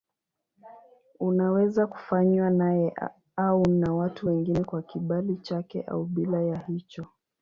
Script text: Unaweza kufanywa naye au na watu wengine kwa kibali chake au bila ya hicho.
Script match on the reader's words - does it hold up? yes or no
yes